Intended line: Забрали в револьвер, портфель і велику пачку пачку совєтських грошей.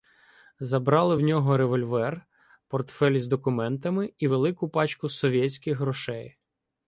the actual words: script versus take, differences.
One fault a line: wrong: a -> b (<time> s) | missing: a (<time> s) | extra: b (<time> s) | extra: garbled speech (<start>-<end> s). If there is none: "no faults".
extra: нього (1.2 s)
extra: із документами (3.1 s)
missing: пачку (5.1 s)